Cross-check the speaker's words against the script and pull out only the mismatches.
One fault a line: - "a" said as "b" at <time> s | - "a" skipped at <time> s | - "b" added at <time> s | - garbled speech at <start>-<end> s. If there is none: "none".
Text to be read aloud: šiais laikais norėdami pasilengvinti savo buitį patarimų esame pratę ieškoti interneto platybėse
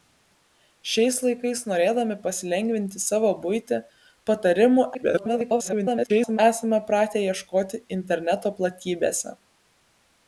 - garbled speech at 4.9-6.4 s